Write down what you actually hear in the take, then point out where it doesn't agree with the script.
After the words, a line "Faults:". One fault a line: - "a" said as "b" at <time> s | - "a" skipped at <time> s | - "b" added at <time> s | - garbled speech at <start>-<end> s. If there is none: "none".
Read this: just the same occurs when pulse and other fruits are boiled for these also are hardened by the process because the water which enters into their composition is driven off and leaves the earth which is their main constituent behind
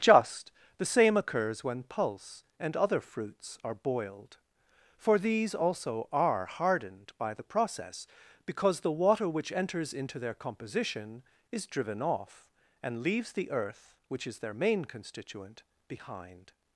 just the same occurs when pulse and other fruits are boiled for these also are hardened by the process because the water which enters into their composition is driven off and leaves the earth which is their main constituent behind
Faults:
none